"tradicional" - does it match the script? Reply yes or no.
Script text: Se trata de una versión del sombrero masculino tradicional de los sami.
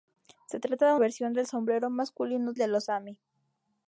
no